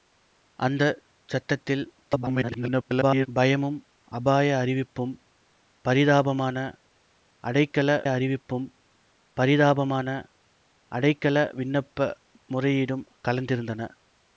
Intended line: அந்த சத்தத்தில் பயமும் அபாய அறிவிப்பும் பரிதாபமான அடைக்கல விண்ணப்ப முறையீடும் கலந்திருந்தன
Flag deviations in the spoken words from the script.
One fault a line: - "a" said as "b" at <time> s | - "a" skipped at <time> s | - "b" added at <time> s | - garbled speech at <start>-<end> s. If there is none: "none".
- garbled speech at 2.0-3.3 s
- "அறிவிப்பும் பரிதாபமான அடைக்கல" added at 8.1 s